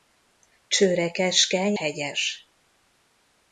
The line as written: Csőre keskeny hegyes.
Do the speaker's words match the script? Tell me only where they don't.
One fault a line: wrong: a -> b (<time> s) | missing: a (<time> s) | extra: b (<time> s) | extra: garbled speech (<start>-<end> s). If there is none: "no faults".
no faults